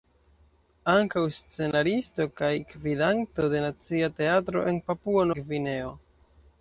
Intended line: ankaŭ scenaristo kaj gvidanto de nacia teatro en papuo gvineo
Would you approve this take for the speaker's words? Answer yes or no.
yes